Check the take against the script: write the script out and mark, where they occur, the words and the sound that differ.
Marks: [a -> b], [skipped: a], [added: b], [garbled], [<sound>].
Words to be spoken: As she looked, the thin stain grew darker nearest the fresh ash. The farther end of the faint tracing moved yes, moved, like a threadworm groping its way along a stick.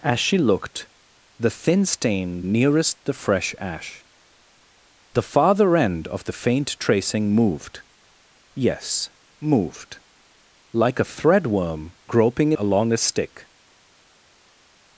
As she looked, the thin stain [skipped: grew darker] nearest the fresh ash. The farther end of the faint tracing moved yes, moved, like a threadworm groping [skipped: its way] along a stick.